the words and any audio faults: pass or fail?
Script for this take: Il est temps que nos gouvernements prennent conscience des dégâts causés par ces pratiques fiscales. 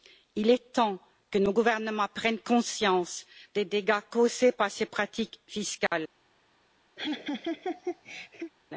fail